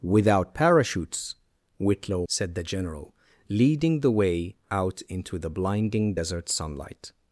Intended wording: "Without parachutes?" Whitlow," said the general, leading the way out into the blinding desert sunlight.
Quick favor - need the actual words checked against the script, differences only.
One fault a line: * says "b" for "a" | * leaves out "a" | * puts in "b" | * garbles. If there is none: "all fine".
all fine